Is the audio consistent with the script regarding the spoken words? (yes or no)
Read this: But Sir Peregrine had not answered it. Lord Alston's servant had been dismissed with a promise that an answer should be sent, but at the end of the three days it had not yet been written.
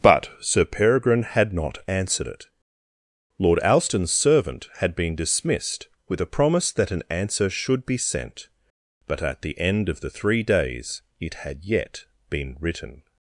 no